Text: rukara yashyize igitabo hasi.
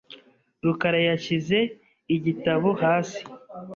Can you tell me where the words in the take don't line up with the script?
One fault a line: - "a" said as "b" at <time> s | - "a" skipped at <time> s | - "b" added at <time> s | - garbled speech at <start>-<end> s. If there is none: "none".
none